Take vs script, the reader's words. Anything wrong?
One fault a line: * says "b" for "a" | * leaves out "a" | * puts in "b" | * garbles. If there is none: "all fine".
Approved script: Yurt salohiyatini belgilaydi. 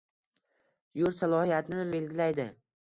all fine